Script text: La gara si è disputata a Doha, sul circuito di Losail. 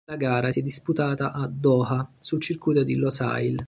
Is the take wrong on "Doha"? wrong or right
right